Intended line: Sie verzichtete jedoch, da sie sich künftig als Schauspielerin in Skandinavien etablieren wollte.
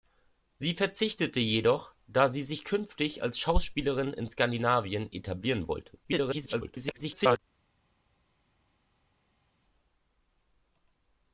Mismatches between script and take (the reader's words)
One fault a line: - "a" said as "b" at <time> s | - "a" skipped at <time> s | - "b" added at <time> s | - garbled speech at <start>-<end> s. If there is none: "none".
- garbled speech at 6.0-7.4 s